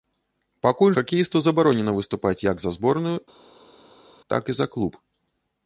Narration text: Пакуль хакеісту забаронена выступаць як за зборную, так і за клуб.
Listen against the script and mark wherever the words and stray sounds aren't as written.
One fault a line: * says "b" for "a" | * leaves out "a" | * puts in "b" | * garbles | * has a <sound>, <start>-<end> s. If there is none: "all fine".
all fine